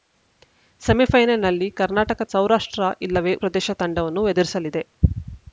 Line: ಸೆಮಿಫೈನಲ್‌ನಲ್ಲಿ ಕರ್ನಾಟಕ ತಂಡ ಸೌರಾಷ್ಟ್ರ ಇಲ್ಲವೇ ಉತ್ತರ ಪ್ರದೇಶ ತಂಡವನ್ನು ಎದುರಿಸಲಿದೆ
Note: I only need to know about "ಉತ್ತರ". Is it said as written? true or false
false